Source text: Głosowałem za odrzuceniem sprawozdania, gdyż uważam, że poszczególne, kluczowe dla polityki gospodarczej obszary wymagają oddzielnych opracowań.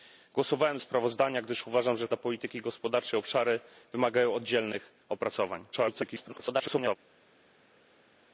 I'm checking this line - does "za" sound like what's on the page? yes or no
no